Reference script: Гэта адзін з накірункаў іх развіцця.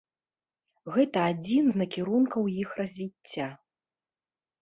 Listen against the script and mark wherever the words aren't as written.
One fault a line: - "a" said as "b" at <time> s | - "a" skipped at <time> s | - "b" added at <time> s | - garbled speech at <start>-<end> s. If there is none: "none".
none